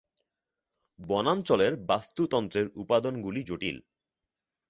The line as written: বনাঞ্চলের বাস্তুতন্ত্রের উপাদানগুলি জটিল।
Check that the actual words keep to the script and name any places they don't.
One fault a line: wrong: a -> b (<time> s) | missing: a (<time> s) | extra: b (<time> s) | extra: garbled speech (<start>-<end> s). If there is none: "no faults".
no faults